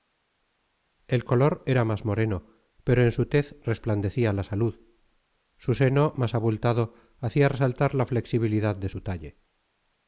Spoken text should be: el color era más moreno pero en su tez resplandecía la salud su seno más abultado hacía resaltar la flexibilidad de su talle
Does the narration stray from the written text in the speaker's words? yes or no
no